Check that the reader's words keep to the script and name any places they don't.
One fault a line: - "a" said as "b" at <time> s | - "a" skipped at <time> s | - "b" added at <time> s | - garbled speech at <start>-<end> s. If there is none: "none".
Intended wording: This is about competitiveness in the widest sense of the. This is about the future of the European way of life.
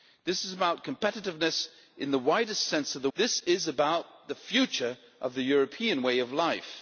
none